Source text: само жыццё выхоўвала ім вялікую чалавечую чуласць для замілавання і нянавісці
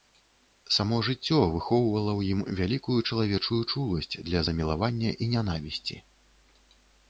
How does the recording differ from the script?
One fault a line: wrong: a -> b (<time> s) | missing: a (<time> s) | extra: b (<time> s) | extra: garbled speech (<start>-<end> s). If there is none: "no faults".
extra: ў (2.2 s)